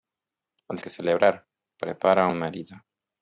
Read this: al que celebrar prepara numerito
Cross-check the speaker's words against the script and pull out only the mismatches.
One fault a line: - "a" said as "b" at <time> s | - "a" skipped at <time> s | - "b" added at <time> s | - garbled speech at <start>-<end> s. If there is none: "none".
none